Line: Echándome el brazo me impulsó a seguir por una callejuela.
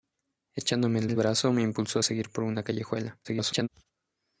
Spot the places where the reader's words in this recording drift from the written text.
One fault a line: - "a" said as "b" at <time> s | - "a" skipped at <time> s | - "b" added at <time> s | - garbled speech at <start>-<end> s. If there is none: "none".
- "el" added at 1.0 s
- garbled speech at 3.2-3.7 s